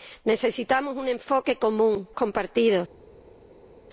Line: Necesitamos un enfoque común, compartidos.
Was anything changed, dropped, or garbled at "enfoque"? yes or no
no